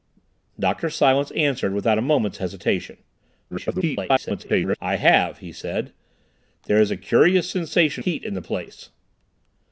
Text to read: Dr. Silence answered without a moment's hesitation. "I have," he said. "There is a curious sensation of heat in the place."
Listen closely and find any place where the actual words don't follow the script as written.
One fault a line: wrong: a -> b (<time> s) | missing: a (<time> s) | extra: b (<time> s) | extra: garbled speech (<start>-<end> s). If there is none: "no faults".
extra: garbled speech (3.5-4.8 s)
missing: of (8.0 s)